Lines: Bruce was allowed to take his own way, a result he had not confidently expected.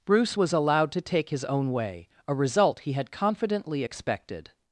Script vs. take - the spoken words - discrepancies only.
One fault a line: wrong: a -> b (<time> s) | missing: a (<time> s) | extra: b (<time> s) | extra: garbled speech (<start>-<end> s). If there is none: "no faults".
missing: not (3.1 s)